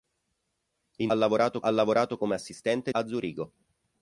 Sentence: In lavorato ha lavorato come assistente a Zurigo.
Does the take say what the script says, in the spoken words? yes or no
yes